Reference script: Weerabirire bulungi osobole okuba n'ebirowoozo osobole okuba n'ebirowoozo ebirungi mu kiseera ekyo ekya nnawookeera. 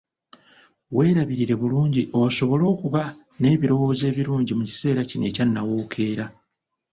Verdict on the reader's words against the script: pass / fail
fail